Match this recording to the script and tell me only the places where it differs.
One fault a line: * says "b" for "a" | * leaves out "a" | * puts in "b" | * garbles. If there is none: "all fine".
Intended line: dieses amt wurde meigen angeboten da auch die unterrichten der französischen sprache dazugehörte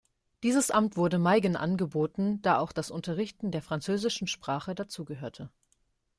* says "das" for "die"